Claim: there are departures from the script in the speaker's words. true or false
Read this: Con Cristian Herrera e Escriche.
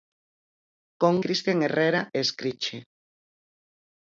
false